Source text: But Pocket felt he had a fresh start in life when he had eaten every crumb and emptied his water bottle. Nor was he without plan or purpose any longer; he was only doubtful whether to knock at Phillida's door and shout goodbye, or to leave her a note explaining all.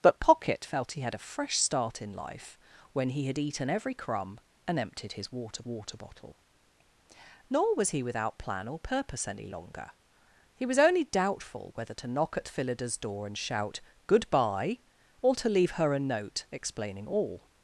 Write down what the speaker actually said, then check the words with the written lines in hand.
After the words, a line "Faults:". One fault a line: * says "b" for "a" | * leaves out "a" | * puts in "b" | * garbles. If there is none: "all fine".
But Pocket felt he had a fresh start in life when he had eaten every crumb and emptied his water water bottle. Nor was he without plan or purpose any longer; he was only doubtful whether to knock at Phillida's door and shout goodbye, or to leave her a note explaining all.
Faults:
* puts in "water"